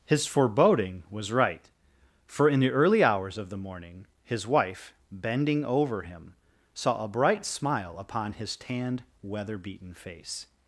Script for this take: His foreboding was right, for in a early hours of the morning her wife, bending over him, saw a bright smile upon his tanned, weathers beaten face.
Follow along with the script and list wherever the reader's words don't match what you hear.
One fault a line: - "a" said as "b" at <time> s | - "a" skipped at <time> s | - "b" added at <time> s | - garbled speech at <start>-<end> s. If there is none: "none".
- "a" said as "the" at 2.6 s
- "her" said as "his" at 4.2 s
- "weathers" said as "weather" at 9.2 s